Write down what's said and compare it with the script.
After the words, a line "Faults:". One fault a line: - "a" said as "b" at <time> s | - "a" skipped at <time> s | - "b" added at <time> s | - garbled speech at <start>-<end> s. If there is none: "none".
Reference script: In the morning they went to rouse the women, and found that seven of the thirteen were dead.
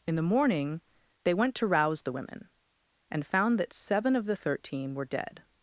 In the morning they went to rouse the women, and found that seven of the thirteen were dead.
Faults:
none